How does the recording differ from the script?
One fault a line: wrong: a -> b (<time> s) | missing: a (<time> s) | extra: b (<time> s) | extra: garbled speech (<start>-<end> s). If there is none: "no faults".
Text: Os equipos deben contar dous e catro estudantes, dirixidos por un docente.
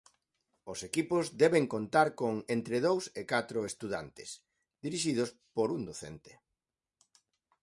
extra: con entre (2.2 s)